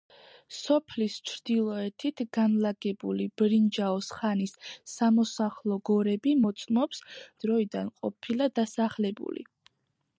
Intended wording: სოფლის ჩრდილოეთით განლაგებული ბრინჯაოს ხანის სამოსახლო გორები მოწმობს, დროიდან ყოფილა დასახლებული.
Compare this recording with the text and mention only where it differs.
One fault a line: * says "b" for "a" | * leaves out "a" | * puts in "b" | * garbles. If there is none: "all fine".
all fine